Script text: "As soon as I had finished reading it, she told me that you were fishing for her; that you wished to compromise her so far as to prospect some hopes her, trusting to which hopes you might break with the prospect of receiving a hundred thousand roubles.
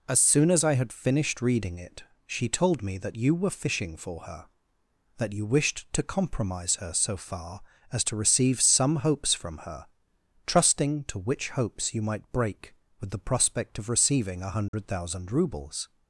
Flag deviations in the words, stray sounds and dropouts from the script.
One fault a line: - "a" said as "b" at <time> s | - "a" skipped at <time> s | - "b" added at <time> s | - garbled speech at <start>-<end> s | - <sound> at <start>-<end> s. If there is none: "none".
- "prospect" said as "receive" at 8.1 s
- "from" added at 9.3 s
- dropout at 14.7-14.7 s